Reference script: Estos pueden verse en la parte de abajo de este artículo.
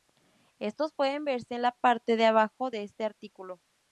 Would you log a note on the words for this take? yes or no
no